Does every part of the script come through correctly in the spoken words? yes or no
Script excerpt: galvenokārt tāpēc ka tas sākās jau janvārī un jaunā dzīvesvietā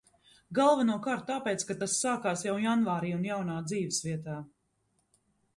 yes